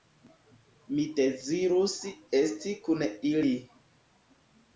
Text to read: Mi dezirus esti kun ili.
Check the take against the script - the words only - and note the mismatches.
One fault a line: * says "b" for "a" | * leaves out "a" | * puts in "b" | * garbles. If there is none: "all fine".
all fine